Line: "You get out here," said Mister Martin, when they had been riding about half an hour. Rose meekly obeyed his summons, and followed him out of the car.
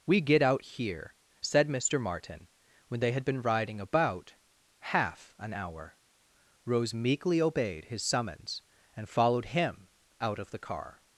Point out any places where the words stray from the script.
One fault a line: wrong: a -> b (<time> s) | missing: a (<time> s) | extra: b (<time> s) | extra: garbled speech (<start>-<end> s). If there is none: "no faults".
wrong: You -> We (0.1 s)